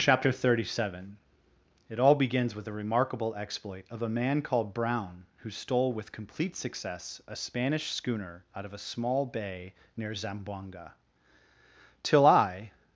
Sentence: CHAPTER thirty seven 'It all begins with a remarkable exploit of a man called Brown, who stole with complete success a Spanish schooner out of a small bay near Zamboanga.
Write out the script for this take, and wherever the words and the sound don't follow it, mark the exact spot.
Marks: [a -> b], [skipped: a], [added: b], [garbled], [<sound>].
CHAPTER thirty seven 'It all begins with a remarkable exploit of a man called Brown, who stole with complete success a Spanish schooner out of a small bay near Zamboanga. [added: Till I]